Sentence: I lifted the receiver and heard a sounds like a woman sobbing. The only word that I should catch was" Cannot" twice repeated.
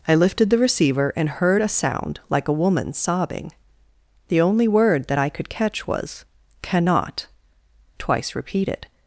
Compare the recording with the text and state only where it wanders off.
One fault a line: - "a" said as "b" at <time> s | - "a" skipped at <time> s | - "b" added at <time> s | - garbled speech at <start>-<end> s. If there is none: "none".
- "sounds" said as "sound" at 1.7 s
- "should" said as "could" at 5.3 s